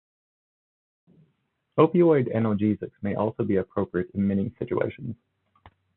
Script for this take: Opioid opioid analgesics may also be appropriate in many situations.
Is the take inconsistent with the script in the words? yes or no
yes